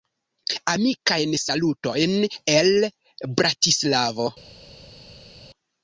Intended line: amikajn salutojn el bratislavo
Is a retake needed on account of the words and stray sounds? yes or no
no